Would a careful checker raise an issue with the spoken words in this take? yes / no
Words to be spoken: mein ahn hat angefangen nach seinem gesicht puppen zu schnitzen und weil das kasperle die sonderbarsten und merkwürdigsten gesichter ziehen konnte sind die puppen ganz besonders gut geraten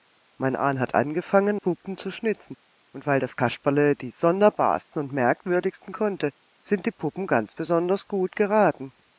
yes